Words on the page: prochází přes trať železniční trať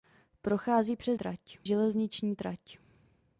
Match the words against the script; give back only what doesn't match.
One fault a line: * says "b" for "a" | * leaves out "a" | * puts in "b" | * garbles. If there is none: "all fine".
all fine